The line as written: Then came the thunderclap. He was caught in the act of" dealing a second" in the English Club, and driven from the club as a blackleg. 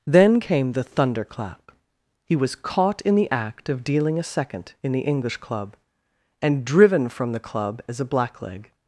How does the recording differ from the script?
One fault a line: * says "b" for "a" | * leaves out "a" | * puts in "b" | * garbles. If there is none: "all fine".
all fine